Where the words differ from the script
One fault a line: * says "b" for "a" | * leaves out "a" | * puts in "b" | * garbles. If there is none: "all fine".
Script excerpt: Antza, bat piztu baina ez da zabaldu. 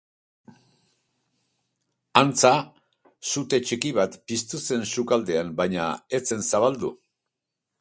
* puts in "sute txiki"
* puts in "zen sukaldean"
* says "zen" for "da"